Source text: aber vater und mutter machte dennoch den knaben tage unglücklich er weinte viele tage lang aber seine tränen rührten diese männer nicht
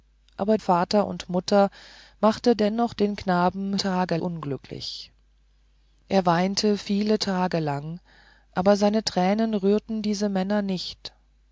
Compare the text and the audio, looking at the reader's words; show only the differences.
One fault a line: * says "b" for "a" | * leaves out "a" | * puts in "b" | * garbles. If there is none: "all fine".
all fine